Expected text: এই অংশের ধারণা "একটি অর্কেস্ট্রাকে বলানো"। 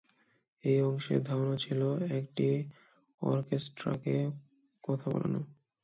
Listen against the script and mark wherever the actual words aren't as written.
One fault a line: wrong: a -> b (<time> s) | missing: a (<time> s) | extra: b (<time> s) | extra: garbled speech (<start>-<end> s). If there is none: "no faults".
extra: ছিল (1.6 s)
extra: কথা (4.8 s)